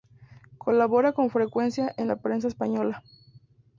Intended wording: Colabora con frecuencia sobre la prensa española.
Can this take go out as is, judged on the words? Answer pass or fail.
fail